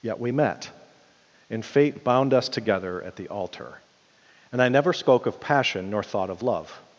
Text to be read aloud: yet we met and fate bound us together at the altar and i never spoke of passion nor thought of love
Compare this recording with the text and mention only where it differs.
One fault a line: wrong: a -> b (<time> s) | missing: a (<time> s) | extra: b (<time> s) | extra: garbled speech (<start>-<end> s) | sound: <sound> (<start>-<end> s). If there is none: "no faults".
no faults